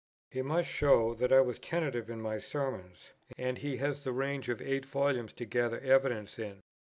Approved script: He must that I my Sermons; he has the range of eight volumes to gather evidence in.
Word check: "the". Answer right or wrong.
right